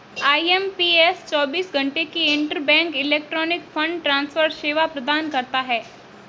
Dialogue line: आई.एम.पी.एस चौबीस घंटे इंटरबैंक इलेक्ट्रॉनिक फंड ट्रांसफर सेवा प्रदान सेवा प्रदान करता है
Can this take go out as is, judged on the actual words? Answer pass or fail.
fail